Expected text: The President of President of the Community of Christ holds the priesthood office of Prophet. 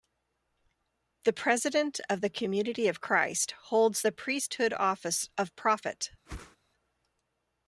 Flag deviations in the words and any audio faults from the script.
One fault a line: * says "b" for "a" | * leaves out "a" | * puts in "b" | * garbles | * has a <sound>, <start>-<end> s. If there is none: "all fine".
* leaves out "President of"
* has a whoosh, 6.3-6.6 s